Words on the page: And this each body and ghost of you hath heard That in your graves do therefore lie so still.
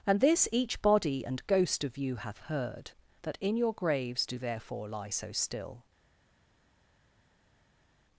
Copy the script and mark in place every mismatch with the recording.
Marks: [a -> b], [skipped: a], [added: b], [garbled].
And this each body and ghost of you hath heard That in your graves do therefore lie so still.